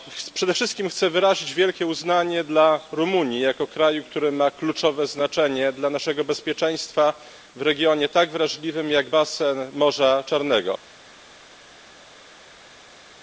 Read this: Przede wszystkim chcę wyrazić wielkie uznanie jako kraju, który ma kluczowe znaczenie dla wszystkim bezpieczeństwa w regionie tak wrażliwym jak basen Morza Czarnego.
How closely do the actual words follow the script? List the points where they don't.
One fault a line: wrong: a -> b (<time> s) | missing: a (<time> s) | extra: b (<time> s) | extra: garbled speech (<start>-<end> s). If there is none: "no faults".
extra: dla Rumunii (2.4 s)
wrong: wszystkim -> naszego (5.9 s)